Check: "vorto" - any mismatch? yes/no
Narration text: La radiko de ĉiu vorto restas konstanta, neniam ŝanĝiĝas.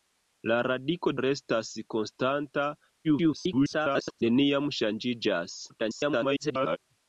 yes